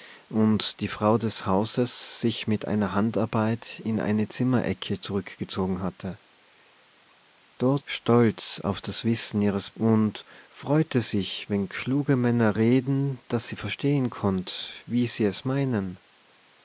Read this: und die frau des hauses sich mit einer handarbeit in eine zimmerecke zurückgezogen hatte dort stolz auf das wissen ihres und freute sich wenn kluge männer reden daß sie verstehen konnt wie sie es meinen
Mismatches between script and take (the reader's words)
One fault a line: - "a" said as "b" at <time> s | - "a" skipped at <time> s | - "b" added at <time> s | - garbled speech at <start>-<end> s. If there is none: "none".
none